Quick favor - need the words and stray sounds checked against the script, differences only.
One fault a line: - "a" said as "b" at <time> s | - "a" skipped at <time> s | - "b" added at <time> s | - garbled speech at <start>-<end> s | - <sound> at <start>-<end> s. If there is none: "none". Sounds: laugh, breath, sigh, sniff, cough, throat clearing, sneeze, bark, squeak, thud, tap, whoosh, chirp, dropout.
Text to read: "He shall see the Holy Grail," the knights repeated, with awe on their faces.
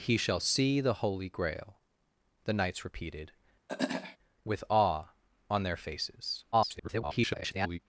- throat clearing at 3.7-4.2 s
- garbled speech at 6.5-7.8 s